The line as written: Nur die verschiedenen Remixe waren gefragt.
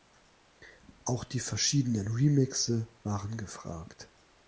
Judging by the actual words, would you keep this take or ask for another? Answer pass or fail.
fail